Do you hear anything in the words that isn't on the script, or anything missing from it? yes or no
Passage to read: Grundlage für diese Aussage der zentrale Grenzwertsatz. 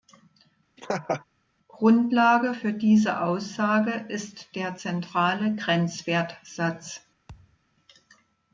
yes